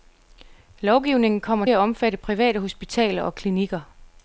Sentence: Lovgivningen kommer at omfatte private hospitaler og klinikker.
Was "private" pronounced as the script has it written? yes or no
yes